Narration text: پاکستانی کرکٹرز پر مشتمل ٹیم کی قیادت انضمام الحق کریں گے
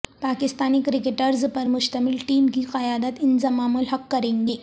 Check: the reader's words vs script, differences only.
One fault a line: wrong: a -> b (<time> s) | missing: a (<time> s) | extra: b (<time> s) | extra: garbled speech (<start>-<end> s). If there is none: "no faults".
no faults